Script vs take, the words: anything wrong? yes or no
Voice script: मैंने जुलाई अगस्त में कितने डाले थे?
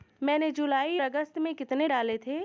no